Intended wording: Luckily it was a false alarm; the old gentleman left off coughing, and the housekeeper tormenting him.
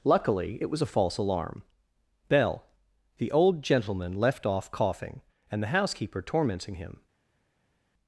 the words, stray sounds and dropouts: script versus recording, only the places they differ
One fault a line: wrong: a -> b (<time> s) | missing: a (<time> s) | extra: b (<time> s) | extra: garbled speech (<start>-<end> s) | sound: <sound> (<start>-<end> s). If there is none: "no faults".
extra: bell (2.3 s)